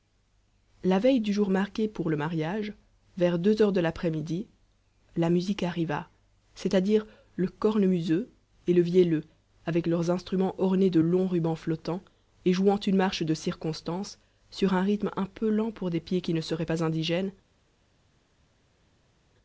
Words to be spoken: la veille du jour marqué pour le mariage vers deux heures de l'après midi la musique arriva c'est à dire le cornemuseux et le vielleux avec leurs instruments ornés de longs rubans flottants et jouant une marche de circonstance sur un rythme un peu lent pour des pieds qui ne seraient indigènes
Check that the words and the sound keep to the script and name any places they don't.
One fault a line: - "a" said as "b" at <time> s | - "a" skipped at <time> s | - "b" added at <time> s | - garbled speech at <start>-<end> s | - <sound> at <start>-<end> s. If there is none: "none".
- "pas" added at 16.6 s